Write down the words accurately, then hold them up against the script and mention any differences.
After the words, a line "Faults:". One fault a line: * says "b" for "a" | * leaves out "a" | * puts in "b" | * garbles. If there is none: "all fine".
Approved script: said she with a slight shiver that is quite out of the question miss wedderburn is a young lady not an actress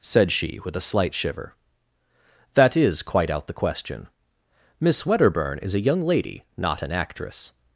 said she with a slight shiver that is quite out the question miss wedderburn is a young lady not an actress
Faults:
* leaves out "of"